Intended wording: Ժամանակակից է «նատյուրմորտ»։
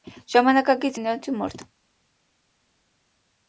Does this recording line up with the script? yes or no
yes